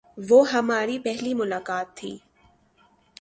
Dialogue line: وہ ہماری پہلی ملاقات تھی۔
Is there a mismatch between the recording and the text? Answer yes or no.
no